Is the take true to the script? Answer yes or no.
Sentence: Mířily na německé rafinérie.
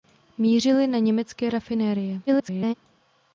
no